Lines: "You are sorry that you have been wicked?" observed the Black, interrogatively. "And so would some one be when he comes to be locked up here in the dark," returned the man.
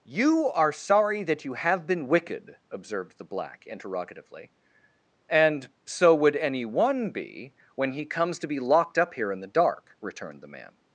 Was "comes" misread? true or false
false